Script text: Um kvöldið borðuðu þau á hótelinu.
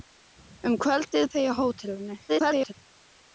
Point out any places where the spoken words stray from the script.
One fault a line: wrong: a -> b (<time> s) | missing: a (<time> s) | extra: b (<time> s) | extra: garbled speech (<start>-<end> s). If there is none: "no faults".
missing: borðuðu (1.3 s)
extra: garbled speech (2.3-2.7 s)